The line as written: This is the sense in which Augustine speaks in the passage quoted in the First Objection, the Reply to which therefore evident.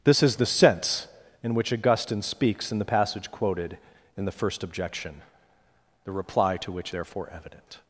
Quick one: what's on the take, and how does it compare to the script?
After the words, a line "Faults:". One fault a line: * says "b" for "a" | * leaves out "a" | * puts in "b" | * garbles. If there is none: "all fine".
This is the sense in which Augustine speaks in the passage quoted in the First Objection, the Reply to which therefore evident.
Faults:
all fine